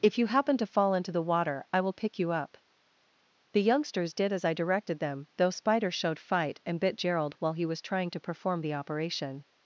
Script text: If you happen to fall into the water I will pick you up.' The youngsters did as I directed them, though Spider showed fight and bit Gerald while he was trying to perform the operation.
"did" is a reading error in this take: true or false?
false